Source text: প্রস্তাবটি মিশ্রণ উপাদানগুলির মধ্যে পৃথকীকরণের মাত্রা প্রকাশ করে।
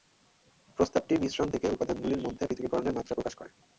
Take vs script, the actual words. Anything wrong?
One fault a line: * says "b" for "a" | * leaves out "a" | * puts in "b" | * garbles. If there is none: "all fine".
* puts in "থেকে"